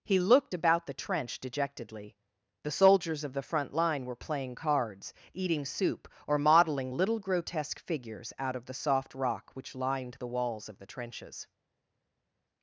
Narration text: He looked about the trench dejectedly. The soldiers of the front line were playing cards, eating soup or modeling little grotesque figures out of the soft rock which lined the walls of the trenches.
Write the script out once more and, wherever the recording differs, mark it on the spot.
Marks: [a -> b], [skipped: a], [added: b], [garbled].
He looked about the trench dejectedly. The soldiers of the front line were playing cards, eating soup or modeling little grotesque figures out of the soft rock which lined the walls of the trenches.